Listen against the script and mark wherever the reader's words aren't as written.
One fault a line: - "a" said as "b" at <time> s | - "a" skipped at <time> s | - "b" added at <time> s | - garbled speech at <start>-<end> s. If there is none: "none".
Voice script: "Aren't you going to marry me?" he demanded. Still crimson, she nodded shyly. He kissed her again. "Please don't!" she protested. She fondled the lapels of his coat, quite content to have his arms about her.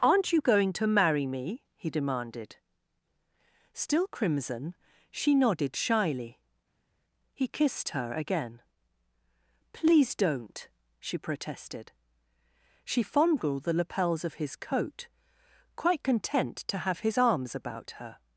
none